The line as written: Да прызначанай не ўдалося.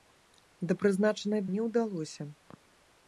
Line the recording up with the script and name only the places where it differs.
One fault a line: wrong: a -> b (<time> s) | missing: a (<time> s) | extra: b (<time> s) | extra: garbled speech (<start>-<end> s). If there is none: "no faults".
no faults